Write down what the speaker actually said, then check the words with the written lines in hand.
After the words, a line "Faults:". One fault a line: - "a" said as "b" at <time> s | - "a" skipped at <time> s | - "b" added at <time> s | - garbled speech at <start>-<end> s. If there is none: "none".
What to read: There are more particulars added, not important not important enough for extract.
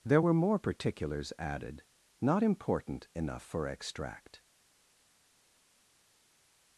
There were more particulars added, not important enough for extract.
Faults:
- "are" said as "were" at 0.2 s
- "not important" skipped at 3.1 s